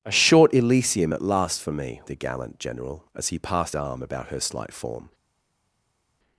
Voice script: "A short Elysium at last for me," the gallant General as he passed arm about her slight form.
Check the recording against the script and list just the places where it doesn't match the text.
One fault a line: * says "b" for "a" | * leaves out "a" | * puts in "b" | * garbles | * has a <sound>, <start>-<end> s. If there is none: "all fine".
all fine